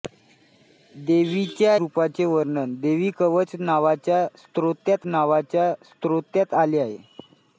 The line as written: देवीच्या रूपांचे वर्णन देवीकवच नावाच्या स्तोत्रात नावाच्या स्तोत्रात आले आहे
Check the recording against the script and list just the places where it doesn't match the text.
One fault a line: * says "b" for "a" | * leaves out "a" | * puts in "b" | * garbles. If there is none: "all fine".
all fine